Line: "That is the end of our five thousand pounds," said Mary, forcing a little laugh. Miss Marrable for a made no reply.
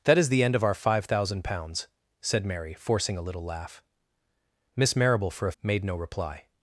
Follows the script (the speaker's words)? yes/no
yes